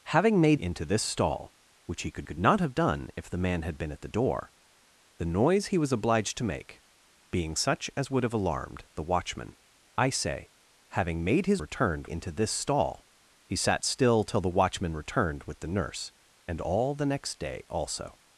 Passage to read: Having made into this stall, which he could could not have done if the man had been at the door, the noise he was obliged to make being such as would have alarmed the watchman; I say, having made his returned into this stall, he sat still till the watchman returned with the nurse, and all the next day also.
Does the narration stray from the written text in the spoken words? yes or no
no